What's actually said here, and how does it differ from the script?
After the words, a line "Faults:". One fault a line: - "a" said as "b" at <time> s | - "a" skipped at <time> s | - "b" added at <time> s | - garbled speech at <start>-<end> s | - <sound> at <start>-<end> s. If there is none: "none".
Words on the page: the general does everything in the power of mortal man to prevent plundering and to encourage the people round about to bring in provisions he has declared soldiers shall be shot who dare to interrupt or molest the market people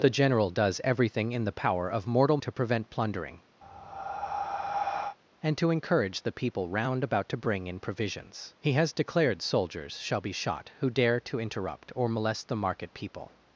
the general does everything in the power of mortal to prevent plundering and to encourage the people round about to bring in provisions he has declared soldiers shall be shot who dare to interrupt or molest the market people
Faults:
- "man" skipped at 2.4 s
- breath at 3.6-5.2 s